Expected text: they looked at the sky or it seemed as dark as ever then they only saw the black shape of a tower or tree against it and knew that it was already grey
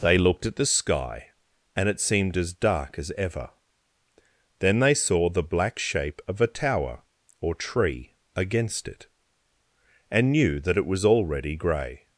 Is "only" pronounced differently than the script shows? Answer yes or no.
yes